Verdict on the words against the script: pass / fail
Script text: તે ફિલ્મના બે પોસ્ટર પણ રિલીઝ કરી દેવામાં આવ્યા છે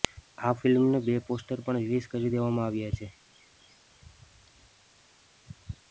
fail